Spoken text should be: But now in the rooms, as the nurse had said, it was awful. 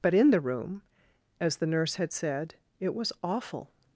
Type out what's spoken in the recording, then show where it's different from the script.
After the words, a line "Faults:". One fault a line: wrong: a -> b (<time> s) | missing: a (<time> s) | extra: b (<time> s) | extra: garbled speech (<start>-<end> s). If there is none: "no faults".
But in the room, as the nurse had said, it was awful.
Faults:
missing: now (0.1 s)
wrong: rooms -> room (0.4 s)